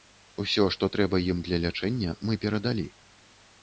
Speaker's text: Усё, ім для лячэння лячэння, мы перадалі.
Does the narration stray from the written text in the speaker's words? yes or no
yes